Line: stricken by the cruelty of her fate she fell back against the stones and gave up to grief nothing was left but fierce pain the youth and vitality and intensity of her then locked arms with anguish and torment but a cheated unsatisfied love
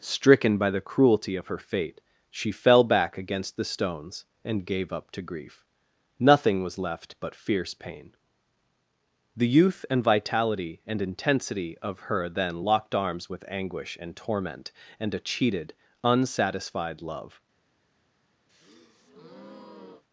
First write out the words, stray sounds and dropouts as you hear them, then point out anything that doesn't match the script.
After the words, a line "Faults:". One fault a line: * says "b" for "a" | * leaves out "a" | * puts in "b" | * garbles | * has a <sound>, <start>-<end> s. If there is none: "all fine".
stricken by the cruelty of her fate she fell back against the stones and gave up to grief nothing was left but fierce pain the youth and vitality and intensity of her then locked arms with anguish and torment and a cheated unsatisfied love
Faults:
* says "and" for "but"
* has a breath, 18.5-20.0 s